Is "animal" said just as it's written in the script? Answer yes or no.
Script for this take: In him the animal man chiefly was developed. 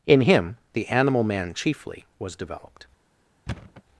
yes